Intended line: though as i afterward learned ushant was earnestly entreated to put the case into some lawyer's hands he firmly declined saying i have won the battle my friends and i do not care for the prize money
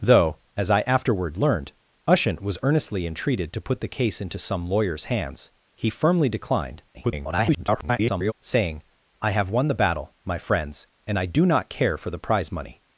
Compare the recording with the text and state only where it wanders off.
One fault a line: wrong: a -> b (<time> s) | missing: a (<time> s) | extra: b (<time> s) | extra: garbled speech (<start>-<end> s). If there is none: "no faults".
extra: garbled speech (6.9-8.3 s)